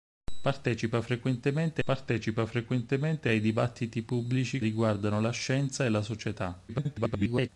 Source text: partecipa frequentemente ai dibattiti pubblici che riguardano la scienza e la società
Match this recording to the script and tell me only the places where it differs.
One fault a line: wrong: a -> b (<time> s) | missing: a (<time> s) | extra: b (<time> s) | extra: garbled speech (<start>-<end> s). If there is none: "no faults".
extra: partecipa frequentemente (1.8 s)
missing: che (4.6 s)
extra: garbled speech (6.7-7.5 s)